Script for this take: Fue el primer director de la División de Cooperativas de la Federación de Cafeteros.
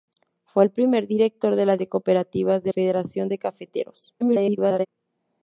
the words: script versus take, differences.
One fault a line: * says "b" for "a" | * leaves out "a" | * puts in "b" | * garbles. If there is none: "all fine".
* leaves out "División"
* leaves out "la"
* garbles